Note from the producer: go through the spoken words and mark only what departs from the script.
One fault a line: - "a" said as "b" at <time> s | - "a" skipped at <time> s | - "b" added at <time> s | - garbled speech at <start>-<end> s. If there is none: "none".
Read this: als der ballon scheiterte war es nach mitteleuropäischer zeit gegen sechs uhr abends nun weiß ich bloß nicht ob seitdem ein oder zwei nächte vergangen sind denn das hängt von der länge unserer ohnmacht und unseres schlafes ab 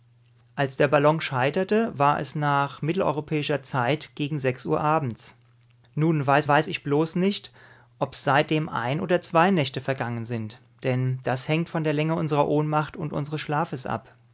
- "weiß" added at 6.5 s